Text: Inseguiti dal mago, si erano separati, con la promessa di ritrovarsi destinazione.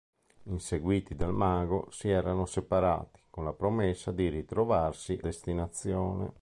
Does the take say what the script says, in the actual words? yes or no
yes